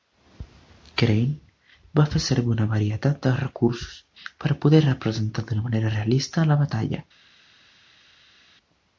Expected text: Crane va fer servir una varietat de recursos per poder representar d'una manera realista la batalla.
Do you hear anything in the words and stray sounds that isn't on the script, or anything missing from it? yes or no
no